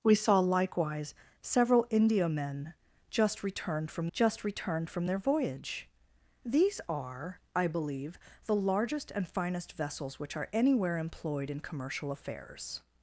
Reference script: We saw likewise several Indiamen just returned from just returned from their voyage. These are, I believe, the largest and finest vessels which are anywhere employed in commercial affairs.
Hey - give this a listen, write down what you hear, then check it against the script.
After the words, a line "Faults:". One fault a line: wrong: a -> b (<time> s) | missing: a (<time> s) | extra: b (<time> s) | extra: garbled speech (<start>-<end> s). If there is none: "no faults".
We saw likewise several Indiamen just returned from just returned from their voyage. These are, I believe, the largest and finest vessels which are anywhere employed in commercial affairs.
Faults:
no faults